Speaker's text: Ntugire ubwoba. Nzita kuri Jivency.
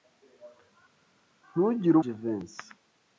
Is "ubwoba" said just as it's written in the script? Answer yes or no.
no